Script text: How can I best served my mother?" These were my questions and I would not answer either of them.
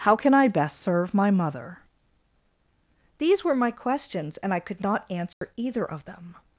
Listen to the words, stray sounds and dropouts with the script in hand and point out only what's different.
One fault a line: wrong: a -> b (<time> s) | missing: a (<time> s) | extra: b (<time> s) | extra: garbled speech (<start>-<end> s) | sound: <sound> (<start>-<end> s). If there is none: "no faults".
wrong: served -> serve (0.8 s)
wrong: would -> could (4.6 s)
sound: dropout (5.3-5.4 s)